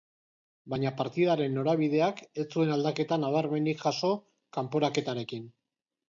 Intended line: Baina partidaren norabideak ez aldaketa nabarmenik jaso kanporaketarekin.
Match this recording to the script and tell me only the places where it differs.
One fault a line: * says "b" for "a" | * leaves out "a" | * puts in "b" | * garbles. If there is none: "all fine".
* puts in "zuen"